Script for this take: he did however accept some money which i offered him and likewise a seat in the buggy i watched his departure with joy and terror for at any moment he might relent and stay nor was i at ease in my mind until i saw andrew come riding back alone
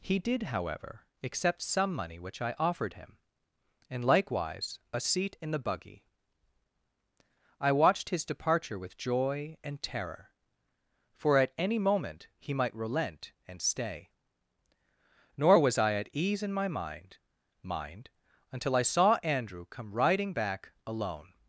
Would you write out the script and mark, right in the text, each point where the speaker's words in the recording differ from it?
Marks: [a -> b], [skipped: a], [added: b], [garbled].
he did however accept some money which i offered him and likewise a seat in the buggy i watched his departure with joy and terror for at any moment he might relent and stay nor was i at ease in my mind [added: mind] until i saw andrew come riding back alone